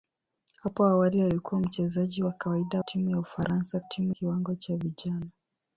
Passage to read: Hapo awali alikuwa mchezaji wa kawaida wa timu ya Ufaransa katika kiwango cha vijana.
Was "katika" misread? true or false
true